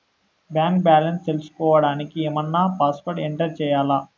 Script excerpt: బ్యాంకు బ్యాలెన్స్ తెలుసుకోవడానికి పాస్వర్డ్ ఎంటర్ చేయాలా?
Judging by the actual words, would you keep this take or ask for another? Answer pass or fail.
fail